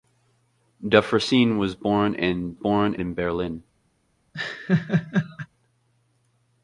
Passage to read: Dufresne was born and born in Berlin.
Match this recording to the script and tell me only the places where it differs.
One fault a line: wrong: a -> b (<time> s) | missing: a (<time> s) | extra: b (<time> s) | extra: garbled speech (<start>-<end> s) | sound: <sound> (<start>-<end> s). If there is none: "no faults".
sound: laugh (4.3-5.5 s)